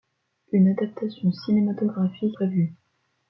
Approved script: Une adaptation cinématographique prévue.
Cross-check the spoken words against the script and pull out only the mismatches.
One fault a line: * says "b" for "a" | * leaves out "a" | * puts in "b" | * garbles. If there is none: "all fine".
all fine